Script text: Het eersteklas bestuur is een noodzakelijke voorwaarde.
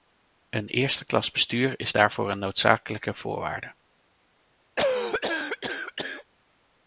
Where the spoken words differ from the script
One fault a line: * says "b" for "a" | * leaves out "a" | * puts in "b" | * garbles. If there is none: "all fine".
* says "Een" for "Het"
* puts in "daarvoor"